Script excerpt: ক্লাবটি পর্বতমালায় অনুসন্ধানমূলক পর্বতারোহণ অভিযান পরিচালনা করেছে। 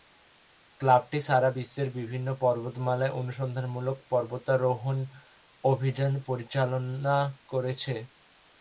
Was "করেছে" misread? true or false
false